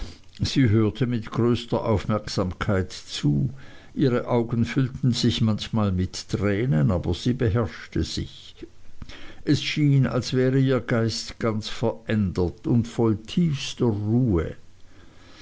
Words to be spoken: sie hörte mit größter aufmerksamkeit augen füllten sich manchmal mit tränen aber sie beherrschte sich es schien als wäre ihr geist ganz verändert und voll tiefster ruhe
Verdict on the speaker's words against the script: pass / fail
fail